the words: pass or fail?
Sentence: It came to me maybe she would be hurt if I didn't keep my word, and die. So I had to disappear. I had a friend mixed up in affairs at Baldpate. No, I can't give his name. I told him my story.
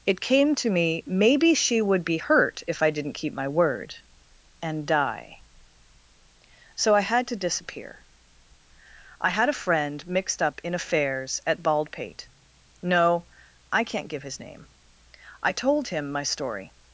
pass